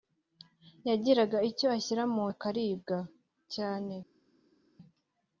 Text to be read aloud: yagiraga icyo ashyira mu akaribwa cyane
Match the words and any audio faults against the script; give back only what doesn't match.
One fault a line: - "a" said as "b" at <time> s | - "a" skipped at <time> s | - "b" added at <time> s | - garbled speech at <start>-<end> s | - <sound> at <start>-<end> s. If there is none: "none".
none